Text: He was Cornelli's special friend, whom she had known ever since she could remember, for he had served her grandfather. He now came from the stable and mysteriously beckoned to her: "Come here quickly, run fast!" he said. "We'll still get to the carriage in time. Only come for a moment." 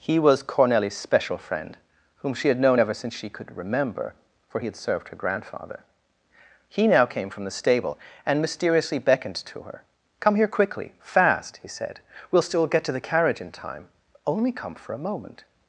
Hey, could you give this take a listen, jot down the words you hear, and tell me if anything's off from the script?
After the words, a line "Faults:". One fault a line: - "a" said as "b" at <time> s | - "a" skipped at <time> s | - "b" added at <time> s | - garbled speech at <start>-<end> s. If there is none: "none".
He was Cornelli's special friend, whom she had known ever since she could remember, for he had served her grandfather. He now came from the stable and mysteriously beckoned to her: "Come here quickly, fast!" he said. "We'll still get to the carriage in time. Only come for a moment."
Faults:
- "run" skipped at 10.9 s